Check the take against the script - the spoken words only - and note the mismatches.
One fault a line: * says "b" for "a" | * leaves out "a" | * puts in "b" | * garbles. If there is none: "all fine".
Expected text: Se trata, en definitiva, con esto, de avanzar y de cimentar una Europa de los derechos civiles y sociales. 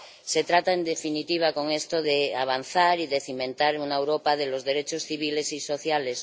all fine